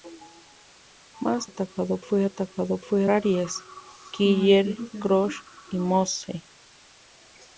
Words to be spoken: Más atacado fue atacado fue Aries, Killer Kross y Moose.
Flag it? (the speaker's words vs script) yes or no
no